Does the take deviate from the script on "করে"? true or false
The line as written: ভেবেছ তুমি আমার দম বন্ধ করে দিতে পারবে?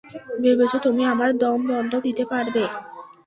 true